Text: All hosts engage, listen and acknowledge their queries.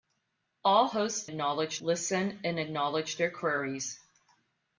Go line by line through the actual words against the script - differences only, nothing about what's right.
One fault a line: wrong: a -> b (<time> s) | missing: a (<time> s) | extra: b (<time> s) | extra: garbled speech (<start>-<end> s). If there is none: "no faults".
wrong: engage -> acknowledge (1.2 s)